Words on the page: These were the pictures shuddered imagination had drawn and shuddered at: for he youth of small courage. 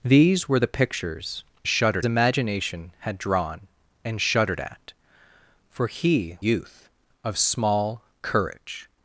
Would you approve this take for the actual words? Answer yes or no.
yes